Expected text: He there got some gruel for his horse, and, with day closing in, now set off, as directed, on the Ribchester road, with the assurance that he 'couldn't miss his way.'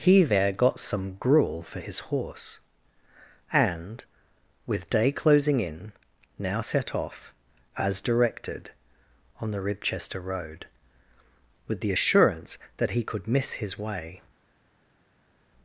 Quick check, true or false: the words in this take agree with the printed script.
false